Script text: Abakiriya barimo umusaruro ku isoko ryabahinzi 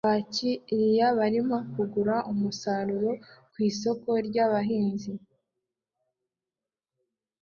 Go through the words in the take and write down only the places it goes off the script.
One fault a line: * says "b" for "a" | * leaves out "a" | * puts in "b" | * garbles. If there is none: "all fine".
* puts in "kugura"